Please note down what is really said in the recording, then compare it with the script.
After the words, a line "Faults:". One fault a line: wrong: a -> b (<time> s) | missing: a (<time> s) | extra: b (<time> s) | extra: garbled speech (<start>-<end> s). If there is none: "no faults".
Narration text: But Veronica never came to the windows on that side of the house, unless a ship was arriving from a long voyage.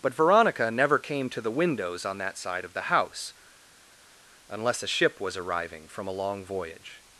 But Veronica never came to the windows on that side of the house, unless a ship was arriving from a long voyage.
Faults:
no faults